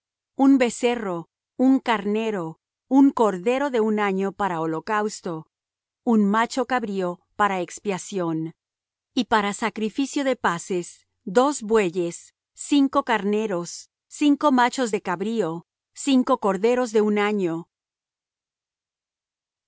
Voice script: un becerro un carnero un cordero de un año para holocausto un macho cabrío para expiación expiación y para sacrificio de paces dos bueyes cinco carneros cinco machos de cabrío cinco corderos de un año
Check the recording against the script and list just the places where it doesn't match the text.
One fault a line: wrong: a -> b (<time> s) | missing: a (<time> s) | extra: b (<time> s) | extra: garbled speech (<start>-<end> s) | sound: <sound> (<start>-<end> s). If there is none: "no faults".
missing: expiación (8.5 s)